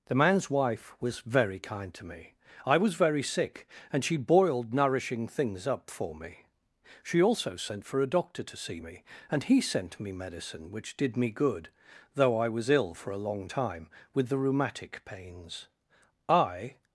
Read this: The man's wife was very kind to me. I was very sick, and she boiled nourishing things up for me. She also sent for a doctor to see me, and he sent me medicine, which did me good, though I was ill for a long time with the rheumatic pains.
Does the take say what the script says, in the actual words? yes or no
no